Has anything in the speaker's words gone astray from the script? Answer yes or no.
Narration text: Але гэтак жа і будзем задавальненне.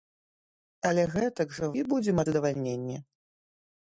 no